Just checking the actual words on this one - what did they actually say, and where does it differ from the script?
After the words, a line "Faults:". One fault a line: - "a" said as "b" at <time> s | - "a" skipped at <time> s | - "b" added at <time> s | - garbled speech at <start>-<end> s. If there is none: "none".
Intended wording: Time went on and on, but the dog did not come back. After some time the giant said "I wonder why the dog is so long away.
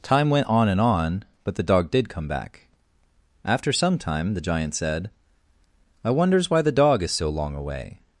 Time went on and on, but the dog did come back. After some time the giant said "I wonders why the dog is so long away.
Faults:
- "not" skipped at 2.1 s
- "wonder" said as "wonders" at 6.1 s